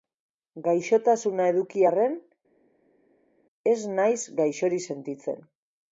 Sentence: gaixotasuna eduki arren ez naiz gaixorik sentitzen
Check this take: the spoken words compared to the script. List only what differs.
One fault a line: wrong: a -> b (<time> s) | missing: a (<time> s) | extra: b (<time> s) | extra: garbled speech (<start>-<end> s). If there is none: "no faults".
no faults